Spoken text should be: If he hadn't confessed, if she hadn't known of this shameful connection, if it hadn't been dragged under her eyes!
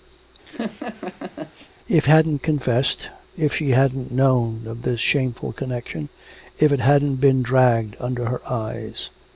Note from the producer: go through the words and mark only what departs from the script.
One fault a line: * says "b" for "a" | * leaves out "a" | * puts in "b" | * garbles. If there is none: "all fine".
* leaves out "he"